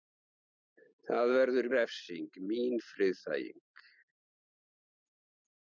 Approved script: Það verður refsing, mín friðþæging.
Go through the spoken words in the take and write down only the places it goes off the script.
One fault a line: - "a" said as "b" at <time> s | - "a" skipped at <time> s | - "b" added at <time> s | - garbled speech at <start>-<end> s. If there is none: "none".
none